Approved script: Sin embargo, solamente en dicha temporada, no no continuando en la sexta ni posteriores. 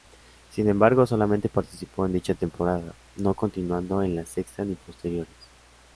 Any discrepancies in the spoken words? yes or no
yes